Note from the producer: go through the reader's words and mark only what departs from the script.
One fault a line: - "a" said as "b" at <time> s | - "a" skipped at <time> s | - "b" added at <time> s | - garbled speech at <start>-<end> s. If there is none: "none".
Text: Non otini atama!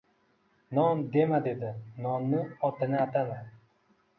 - "dema dedi Nonni" added at 1.1 s